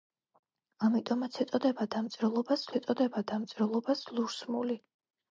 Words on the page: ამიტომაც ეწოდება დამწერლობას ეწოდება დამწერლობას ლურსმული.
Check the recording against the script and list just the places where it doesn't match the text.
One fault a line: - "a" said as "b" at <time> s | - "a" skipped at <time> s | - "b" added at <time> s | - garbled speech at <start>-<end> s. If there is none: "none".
none